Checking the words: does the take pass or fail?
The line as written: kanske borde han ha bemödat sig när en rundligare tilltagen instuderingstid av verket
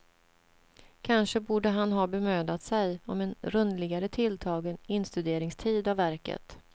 fail